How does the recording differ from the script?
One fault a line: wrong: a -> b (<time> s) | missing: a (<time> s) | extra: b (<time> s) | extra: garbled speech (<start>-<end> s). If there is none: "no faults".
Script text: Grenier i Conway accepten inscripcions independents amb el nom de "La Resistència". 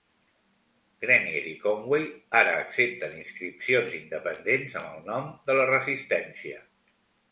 extra: ara (2.4 s)